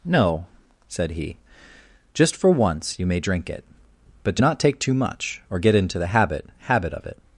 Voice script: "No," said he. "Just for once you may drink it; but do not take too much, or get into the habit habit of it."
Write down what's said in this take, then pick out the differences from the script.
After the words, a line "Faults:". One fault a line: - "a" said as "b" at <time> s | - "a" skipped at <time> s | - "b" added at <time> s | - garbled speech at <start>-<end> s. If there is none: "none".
"No," said he. "Just for once you may drink it; but do not take too much, or get into the habit habit of it."
Faults:
none